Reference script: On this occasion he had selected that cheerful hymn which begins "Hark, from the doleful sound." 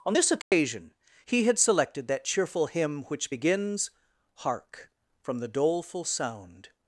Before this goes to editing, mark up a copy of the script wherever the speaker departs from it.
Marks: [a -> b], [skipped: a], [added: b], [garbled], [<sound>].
On this occasion [dropout] he had selected that cheerful hymn which begins "Hark, from the doleful sound."